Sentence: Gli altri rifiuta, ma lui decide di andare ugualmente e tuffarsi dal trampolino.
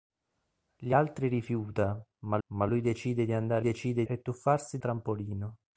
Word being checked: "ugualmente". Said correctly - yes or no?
no